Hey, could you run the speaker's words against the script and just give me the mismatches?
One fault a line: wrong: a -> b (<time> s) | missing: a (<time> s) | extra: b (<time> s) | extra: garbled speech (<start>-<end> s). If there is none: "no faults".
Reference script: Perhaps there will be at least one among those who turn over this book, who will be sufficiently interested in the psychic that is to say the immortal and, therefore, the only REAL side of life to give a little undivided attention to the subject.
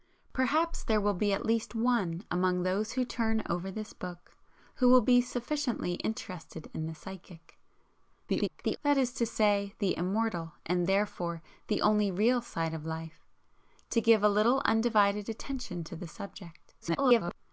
extra: garbled speech (8.3-8.8 s)
extra: garbled speech (16.8-17.4 s)